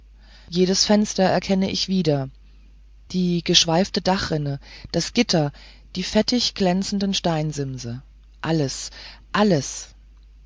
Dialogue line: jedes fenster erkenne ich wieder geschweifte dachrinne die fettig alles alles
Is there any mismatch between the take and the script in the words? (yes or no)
yes